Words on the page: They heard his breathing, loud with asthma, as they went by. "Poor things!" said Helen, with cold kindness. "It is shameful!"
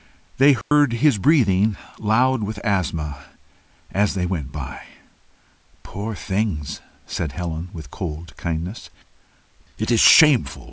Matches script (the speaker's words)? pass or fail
pass